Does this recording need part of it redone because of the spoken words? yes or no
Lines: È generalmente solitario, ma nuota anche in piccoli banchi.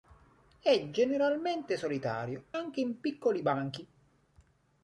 yes